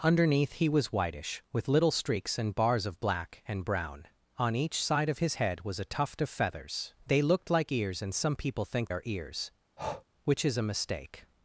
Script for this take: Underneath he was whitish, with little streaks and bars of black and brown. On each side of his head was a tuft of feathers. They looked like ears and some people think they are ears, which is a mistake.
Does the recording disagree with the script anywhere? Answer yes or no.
yes